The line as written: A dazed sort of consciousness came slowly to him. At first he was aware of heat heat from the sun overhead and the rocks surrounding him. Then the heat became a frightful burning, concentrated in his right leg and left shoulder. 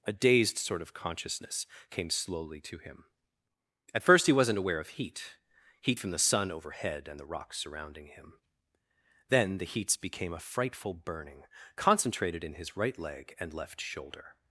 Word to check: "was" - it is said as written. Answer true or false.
false